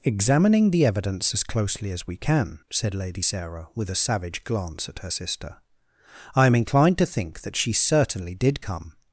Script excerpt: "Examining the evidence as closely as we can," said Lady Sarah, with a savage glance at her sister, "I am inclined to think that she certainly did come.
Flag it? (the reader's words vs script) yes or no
no